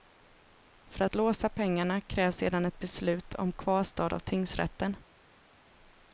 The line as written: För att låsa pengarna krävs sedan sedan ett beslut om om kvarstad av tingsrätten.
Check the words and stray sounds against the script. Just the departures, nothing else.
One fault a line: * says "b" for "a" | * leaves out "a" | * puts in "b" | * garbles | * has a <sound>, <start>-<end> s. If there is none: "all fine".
* leaves out "sedan"
* leaves out "om"